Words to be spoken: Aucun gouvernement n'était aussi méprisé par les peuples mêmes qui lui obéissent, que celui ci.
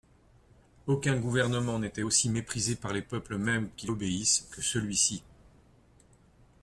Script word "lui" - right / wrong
wrong